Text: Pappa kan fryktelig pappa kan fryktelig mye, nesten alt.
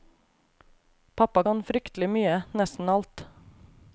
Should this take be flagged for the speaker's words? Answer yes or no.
yes